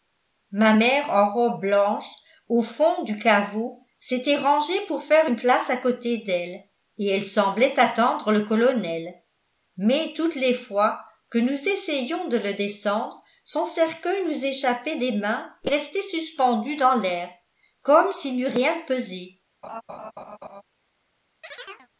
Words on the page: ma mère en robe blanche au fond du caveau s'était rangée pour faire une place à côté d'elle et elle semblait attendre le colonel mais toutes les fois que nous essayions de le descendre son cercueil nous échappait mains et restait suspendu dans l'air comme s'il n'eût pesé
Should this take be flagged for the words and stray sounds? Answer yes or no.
yes